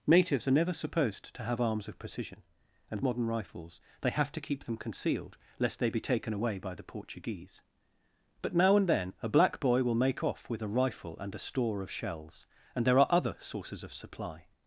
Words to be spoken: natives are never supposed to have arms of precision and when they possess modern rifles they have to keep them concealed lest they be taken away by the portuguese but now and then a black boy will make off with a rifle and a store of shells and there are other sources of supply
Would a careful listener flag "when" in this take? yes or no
yes